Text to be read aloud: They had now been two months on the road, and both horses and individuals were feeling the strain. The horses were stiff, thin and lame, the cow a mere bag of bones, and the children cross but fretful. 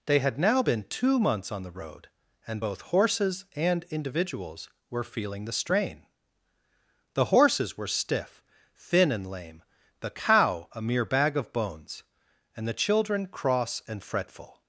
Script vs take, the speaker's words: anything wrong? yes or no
yes